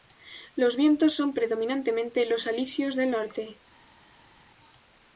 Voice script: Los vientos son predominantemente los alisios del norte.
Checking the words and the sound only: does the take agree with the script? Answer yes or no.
yes